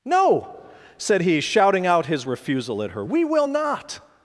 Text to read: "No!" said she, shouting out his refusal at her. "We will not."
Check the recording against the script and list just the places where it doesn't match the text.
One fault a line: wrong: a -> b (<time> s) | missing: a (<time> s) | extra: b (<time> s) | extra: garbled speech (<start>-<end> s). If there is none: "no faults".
wrong: she -> he (1.2 s)